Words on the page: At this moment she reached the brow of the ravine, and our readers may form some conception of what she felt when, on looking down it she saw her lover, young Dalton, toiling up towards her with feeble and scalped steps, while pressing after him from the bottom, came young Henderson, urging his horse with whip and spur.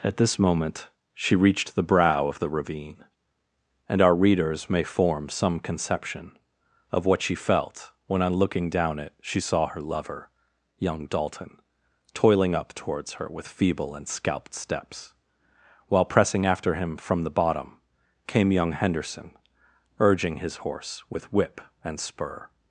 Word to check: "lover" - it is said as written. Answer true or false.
true